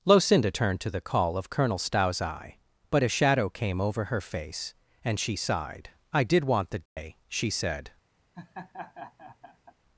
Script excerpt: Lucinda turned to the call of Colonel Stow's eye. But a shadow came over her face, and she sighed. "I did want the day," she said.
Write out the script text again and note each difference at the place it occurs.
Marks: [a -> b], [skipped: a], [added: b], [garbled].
Lucinda turned to the call of Colonel Stow's eye. But a shadow came over her face, and she sighed. "I did want the day," she said.